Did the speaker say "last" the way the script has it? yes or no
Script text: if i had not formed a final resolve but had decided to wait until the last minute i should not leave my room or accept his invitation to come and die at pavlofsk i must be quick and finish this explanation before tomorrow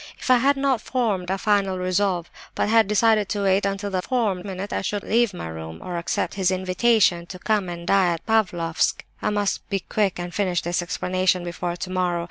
no